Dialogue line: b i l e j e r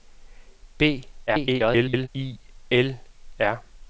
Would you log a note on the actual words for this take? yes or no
yes